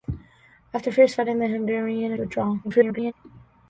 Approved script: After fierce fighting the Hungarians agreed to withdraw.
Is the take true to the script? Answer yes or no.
no